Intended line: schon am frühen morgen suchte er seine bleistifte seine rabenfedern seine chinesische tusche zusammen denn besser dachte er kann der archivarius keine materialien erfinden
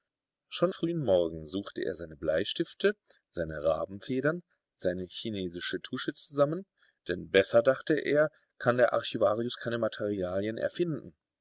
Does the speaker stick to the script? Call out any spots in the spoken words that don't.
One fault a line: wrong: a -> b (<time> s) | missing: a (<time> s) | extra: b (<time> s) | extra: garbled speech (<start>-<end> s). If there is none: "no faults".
missing: am (0.7 s)